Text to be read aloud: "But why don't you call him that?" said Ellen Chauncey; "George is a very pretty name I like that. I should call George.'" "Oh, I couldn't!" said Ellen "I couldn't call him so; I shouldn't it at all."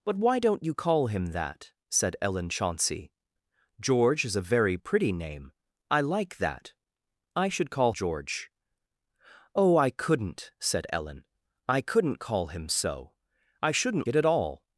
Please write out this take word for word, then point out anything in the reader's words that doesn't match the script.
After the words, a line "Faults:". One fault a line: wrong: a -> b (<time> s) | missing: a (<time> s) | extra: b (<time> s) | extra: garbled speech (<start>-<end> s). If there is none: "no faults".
"But why don't you call him that?" said Ellen Chauncey; "George is a very pretty name I like that. I should call George.'" "Oh, I couldn't!" said Ellen "I couldn't call him so; I shouldn't it at all."
Faults:
no faults